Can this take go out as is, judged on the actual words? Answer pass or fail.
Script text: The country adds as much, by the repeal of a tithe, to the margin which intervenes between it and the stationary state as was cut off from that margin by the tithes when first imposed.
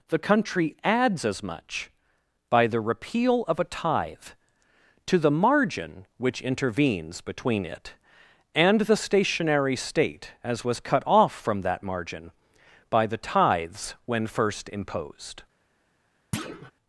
pass